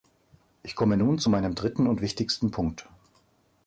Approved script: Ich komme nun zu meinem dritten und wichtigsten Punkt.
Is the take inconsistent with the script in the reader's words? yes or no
no